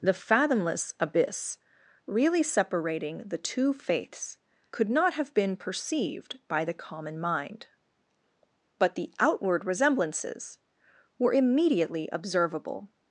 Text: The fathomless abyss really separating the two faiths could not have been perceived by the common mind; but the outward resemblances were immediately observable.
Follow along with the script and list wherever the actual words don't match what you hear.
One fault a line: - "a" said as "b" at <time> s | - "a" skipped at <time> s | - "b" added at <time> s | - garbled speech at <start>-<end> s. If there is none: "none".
none